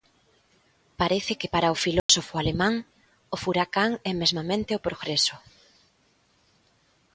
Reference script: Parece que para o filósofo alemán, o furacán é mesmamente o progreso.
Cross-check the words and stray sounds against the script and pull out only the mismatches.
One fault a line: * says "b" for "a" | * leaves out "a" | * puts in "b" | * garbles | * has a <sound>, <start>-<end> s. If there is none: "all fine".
* has a dropout, 2.0-2.1 s